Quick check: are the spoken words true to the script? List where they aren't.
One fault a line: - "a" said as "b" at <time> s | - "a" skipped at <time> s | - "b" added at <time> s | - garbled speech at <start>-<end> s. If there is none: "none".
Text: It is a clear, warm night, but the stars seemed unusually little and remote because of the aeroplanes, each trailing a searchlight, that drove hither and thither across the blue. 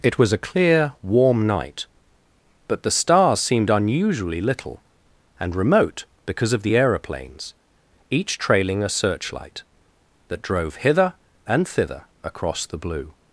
- "is" said as "was" at 0.2 s